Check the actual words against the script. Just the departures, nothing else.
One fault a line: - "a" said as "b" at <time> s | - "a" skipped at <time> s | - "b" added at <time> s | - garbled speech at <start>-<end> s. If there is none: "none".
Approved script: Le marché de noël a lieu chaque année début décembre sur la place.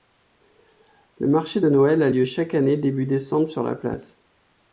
none